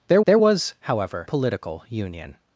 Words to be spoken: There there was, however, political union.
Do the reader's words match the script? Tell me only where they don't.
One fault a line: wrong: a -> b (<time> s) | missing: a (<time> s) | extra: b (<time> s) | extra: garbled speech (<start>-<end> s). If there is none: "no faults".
no faults